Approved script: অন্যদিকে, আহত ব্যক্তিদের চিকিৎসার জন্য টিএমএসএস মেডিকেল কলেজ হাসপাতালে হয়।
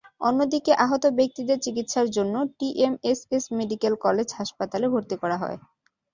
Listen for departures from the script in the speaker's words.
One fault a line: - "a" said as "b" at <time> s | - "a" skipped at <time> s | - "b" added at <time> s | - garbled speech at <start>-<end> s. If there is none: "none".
- "ভর্তি করা" added at 4.9 s